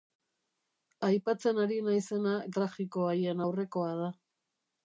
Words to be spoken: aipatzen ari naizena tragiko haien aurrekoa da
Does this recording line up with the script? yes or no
yes